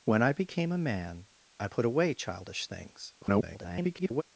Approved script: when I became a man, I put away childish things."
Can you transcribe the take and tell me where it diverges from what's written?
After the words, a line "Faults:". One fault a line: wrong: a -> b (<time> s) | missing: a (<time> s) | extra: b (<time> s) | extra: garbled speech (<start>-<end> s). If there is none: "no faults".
when I became a man, I put away childish things." [garbled]
Faults:
extra: garbled speech (3.2-4.2 s)